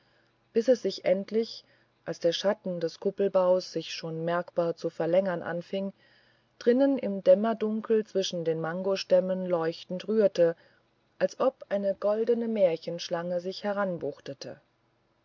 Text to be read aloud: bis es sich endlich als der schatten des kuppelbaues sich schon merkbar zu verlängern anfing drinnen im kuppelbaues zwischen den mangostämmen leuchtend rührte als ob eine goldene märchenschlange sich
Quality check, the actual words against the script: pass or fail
fail